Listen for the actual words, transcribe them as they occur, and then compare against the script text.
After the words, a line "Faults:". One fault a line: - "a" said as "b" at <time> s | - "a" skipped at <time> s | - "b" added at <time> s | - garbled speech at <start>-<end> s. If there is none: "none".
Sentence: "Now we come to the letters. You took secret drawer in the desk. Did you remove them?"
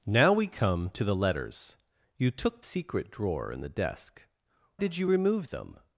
"Now we come to the letters. You took secret drawer in the desk. Did you remove them?"
Faults:
none